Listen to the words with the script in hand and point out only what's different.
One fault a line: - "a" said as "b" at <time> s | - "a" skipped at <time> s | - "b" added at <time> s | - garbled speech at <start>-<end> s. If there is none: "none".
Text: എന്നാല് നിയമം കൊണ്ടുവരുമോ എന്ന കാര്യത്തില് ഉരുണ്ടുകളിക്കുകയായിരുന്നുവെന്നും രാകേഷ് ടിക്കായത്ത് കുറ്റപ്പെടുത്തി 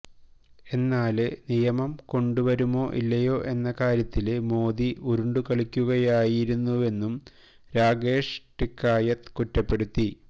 - "ഇല്ലയോ" added at 2.9 s
- "മോദി" added at 4.5 s